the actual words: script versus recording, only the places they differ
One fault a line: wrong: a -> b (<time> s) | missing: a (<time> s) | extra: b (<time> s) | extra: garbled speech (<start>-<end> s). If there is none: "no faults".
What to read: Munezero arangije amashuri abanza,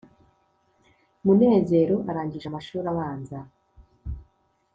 no faults